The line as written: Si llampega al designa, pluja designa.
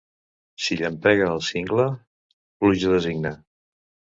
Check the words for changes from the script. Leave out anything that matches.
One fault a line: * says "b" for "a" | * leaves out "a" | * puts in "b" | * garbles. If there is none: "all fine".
* says "cingle" for "designa"